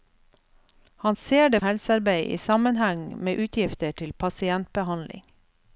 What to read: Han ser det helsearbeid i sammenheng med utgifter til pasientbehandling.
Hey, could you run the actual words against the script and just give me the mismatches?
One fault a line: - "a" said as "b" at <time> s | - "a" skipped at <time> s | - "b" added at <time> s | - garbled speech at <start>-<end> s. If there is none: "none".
none